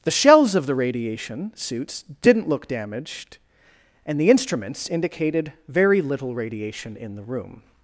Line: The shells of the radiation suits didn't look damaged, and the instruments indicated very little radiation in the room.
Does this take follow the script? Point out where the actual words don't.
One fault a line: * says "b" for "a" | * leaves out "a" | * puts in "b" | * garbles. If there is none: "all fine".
all fine